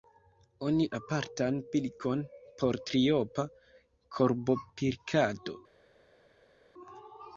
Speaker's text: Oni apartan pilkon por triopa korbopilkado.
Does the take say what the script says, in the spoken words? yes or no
yes